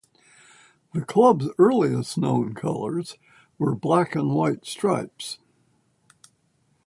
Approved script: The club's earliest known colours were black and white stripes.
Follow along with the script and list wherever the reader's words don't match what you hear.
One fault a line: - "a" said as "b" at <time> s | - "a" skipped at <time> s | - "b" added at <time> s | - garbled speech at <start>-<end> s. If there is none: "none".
none